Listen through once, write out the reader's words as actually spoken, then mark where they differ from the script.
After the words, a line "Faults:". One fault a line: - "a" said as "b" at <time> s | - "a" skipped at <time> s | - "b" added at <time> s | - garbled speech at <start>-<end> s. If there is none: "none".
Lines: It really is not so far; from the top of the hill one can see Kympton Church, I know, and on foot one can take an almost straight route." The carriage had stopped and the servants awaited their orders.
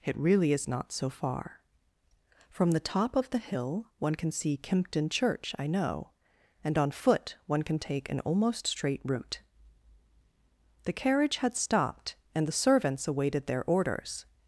It really is not so far; from the top of the hill one can see Kympton Church, I know, and on foot one can take an almost straight route." The carriage had stopped and the servants awaited their orders.
Faults:
none